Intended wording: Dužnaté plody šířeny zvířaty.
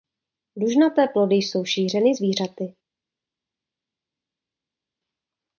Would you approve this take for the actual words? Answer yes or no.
no